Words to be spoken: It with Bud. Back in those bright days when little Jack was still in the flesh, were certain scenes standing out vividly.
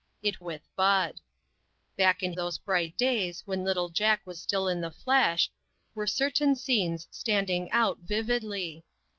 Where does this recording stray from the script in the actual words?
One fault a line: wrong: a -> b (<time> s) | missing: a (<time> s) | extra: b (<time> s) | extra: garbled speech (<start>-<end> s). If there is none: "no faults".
no faults